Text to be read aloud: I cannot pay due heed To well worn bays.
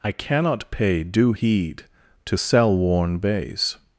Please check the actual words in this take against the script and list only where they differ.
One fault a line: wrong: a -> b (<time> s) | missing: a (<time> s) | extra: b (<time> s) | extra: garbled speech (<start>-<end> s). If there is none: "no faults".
wrong: well -> cell (2.3 s)